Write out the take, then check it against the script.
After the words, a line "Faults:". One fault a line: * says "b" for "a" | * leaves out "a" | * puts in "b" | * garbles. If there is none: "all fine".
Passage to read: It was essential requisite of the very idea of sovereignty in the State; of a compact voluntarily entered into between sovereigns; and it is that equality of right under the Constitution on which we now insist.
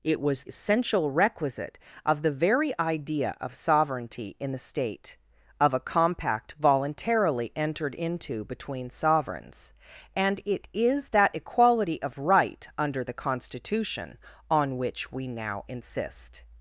It was essential requisite of the very idea of sovereignty in the State; of a compact voluntarily entered into between sovereigns; and it is that equality of right under the Constitution on which we now insist.
Faults:
all fine